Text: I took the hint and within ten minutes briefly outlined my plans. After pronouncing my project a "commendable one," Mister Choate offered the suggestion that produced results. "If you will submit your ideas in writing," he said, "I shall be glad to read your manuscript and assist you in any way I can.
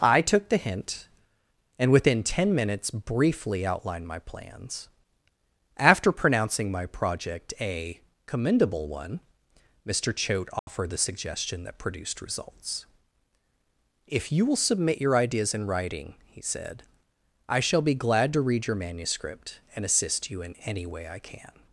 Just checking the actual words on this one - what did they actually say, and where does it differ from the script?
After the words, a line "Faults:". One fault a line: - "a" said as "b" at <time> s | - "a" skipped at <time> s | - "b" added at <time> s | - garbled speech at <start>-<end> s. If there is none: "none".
I took the hint and within ten minutes briefly outlined my plans. After pronouncing my project a "commendable one," Mister Choate offered the suggestion that produced results. "If you will submit your ideas in writing," he said, "I shall be glad to read your manuscript and assist you in any way I can.
Faults:
none